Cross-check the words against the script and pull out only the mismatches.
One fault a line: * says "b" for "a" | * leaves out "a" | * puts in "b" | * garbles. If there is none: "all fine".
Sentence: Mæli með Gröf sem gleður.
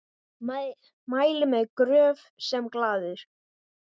all fine